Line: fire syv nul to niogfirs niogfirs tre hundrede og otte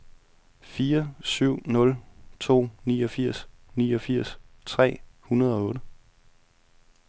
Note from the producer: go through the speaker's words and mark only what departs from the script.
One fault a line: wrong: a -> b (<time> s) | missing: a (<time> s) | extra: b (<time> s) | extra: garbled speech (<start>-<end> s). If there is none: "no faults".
no faults